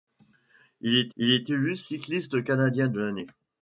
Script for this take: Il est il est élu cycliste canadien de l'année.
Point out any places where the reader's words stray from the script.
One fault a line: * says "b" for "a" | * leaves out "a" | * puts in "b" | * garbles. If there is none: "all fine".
all fine